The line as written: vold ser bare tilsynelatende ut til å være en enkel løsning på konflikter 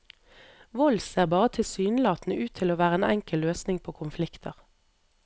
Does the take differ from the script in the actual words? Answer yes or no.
no